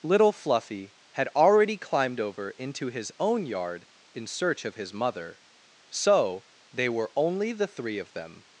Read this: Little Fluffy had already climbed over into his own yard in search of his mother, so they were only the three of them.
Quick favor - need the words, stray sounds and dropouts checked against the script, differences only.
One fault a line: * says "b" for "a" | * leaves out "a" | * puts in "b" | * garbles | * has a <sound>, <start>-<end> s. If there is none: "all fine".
all fine